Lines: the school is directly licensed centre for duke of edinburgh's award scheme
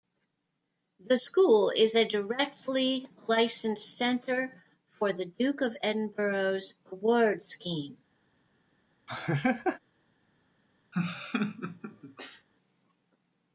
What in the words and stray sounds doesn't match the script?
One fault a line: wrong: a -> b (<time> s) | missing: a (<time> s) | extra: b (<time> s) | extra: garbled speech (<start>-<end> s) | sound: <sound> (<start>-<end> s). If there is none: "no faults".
extra: a (1.9 s)
extra: the (5.1 s)
sound: laugh (9.1-9.8 s)
sound: laugh (10.9-12.5 s)